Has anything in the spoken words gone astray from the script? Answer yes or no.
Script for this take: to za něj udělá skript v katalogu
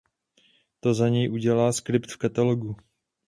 no